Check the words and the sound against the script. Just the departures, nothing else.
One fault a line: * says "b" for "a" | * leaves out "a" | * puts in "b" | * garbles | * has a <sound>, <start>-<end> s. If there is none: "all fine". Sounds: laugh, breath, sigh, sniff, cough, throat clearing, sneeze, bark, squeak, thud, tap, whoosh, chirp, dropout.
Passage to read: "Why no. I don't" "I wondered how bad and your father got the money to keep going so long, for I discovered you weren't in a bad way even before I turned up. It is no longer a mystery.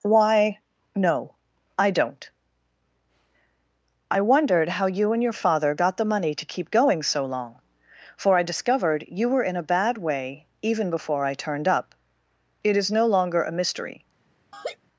* says "you" for "bad"
* says "were" for "weren't"
* has a laugh, 14.5-14.8 s